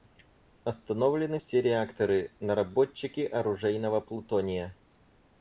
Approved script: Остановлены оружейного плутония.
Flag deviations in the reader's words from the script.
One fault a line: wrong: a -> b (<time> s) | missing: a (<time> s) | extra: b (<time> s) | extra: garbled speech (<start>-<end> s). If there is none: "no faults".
extra: все реакторы наработчики (1.4 s)